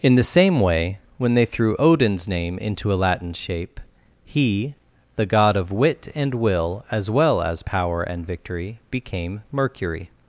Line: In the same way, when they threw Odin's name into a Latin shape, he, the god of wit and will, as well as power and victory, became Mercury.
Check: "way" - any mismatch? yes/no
no